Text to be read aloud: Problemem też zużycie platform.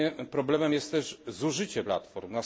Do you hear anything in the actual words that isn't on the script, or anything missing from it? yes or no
yes